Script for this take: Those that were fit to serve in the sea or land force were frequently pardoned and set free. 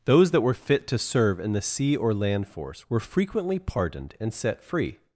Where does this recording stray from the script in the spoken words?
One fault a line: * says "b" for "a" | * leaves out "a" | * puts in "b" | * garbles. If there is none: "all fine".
all fine